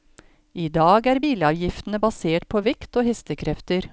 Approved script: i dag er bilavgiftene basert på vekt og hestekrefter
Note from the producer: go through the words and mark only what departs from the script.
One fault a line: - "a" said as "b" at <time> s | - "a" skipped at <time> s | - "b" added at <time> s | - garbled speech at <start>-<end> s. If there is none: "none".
none